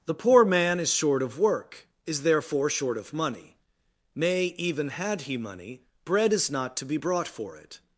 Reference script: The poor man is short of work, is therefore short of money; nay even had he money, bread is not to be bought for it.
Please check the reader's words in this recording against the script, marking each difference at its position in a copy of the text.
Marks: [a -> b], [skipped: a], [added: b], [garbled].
The poor man is short of work, is therefore short of money; nay even had he money, bread is not to be [bought -> brought] for it.